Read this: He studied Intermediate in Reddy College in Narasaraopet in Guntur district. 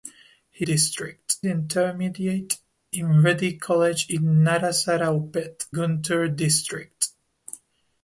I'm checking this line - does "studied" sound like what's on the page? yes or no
no